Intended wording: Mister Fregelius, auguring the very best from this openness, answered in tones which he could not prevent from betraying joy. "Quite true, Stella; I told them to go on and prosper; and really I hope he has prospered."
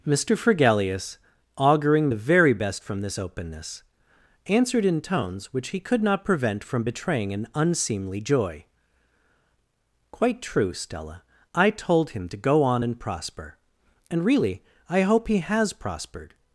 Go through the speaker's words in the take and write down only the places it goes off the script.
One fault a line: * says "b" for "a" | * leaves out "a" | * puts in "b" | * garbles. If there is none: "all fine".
* puts in "an unseemly"
* says "him" for "them"